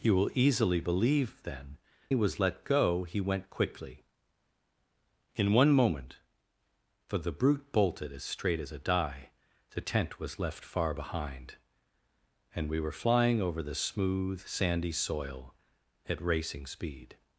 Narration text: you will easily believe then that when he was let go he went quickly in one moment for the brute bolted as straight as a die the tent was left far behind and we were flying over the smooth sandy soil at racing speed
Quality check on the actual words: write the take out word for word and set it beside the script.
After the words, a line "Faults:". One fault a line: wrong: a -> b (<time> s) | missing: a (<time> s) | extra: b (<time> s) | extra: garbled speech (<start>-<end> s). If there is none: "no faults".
you will easily believe then he was let go he went quickly in one moment for the brute bolted as straight as a die the tent was left far behind and we were flying over the smooth sandy soil at racing speed
Faults:
missing: that when (1.8 s)